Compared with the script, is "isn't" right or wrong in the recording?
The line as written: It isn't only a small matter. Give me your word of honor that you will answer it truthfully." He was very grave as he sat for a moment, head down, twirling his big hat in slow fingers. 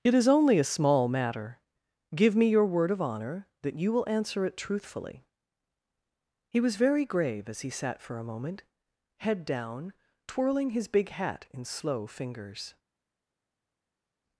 wrong